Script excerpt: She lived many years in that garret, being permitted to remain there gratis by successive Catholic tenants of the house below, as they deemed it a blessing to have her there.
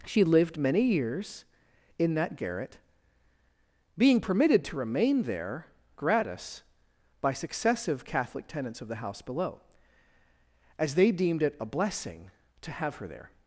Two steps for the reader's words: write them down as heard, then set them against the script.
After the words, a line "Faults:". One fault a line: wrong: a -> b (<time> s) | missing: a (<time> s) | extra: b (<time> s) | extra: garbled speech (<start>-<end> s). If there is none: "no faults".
She lived many years in that garret, being permitted to remain there gratis by successive Catholic tenants of the house below, as they deemed it a blessing to have her there.
Faults:
no faults